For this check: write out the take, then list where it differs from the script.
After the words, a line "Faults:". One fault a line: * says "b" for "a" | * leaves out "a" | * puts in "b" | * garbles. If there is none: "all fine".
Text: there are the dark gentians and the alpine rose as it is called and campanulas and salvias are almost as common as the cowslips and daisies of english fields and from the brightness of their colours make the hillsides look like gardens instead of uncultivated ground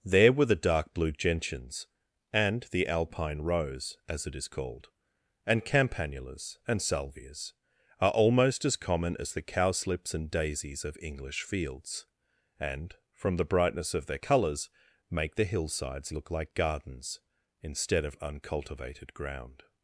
there were the dark blue gentians and the alpine rose as it is called and campanulas and salvias are almost as common as the cowslips and daisies of english fields and from the brightness of their colours make the hillsides look like gardens instead of uncultivated ground
Faults:
* says "were" for "are"
* puts in "blue"